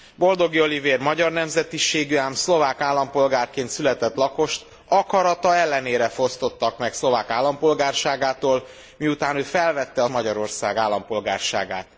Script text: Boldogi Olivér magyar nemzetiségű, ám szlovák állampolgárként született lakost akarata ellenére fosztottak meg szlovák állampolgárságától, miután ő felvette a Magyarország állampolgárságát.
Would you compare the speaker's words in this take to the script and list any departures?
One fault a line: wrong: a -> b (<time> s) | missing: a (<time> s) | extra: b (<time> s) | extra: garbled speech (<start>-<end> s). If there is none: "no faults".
no faults